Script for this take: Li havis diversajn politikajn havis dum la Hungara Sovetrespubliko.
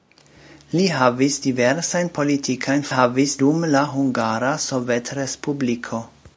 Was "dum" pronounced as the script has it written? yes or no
yes